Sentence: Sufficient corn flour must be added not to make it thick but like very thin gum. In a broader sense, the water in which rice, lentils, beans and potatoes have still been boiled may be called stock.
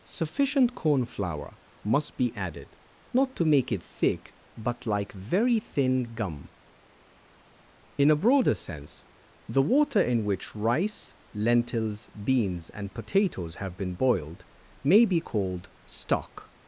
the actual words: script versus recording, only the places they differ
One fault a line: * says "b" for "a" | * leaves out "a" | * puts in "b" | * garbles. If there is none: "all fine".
* leaves out "still"